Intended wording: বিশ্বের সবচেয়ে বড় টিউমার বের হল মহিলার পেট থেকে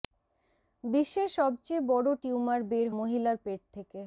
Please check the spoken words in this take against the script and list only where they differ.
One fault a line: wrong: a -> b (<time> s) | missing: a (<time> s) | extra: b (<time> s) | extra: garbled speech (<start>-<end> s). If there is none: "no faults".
missing: হল (2.9 s)